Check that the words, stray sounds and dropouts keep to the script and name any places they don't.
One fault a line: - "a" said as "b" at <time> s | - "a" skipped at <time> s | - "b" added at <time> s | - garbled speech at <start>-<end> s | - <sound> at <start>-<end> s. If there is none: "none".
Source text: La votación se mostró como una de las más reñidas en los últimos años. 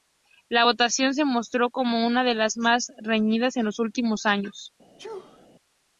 - sneeze at 5.0-5.5 s